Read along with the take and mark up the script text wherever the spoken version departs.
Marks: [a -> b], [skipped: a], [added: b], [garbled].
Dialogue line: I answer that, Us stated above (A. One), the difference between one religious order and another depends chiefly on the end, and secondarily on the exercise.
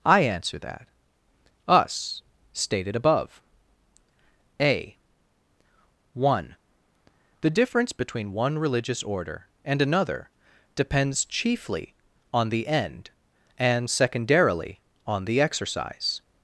I answer that, Us stated above (A. One), the difference between one religious order and another depends chiefly on the end, and secondarily on the exercise.